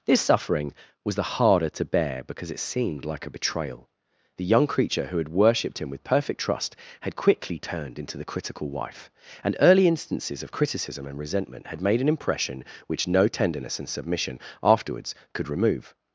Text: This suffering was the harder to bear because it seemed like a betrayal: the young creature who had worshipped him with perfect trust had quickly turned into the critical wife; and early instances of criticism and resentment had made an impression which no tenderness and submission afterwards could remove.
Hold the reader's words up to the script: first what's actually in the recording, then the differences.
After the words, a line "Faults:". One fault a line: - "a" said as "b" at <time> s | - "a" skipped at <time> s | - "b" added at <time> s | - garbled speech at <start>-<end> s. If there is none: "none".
This suffering was the harder to bear because it seemed like a betrayal: the young creature who had worshipped him with perfect trust had quickly turned into the critical wife; and early instances of criticism and resentment had made an impression which no tenderness and submission afterwards could remove.
Faults:
none